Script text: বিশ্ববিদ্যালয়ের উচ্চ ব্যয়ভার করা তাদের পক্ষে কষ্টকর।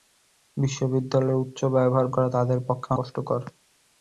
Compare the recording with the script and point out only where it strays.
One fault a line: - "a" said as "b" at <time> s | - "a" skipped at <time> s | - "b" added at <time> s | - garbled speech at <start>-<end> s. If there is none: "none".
none